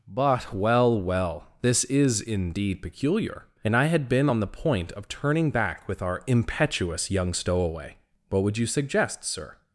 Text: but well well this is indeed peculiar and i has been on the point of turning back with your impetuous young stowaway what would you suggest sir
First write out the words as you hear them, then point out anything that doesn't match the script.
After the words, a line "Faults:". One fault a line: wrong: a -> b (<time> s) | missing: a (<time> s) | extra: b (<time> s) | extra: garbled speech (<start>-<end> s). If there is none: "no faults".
but well well this is indeed peculiar and i had been on the point of turning back with our impetuous young stowaway what would you suggest sir
Faults:
wrong: has -> had (3.8 s)
wrong: your -> our (6.0 s)